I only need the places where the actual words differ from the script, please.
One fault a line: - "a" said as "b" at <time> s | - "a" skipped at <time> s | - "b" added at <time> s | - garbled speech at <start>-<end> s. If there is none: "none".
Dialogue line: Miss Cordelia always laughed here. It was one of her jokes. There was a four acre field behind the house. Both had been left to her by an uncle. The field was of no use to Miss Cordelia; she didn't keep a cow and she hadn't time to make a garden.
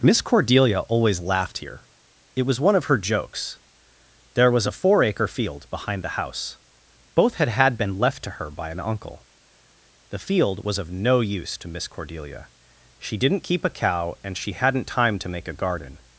- "had" added at 7.5 s